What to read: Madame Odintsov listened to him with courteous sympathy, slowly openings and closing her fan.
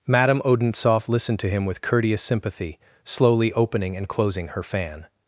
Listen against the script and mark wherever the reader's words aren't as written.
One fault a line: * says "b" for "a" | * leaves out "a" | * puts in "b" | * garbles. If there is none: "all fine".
* says "opening" for "openings"